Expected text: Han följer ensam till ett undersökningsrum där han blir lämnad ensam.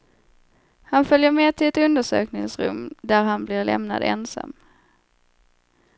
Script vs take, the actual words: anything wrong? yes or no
yes